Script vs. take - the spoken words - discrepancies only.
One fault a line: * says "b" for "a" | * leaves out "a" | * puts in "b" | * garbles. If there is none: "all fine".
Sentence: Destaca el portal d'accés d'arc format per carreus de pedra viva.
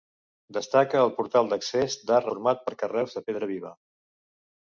all fine